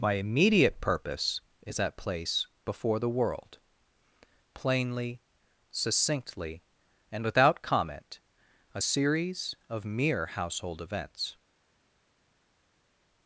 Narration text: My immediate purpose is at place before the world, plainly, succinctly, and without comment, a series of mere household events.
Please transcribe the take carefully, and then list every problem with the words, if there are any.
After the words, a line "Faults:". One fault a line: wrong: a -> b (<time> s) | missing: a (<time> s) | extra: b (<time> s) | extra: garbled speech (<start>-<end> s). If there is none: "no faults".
My immediate purpose is at place before the world, plainly, succinctly, and without comment, a series of mere household events.
Faults:
no faults